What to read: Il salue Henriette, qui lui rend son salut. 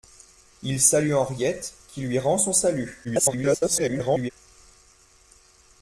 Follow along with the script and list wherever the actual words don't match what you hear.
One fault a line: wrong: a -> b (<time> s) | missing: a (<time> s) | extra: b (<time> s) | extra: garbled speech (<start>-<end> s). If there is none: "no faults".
extra: garbled speech (3.0-4.3 s)